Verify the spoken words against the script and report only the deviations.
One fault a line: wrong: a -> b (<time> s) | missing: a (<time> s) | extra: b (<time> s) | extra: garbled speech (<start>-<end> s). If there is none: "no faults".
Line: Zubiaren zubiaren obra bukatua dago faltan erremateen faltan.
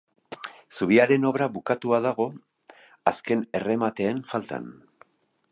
missing: zubiaren (1.3 s)
wrong: faltan -> azken (3.1 s)